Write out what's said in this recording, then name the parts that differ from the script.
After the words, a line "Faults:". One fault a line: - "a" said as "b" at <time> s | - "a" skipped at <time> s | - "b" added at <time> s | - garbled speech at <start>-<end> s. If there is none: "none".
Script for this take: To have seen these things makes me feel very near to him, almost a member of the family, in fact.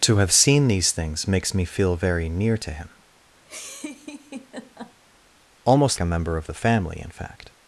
To have seen these things makes me feel very near to him, almost a member of the family, in fact.
Faults:
none